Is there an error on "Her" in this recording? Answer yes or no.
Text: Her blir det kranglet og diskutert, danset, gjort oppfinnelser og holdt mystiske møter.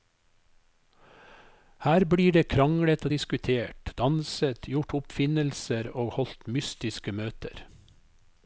no